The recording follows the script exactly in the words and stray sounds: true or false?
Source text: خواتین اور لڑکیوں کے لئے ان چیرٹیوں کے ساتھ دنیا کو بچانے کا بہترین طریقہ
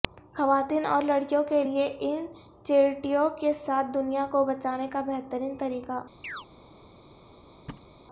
false